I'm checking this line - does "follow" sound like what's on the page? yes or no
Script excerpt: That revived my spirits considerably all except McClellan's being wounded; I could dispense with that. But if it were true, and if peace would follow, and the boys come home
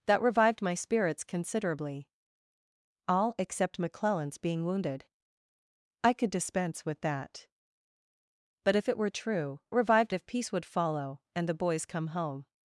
yes